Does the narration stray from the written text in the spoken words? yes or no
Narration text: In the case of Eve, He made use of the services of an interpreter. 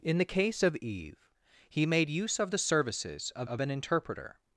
yes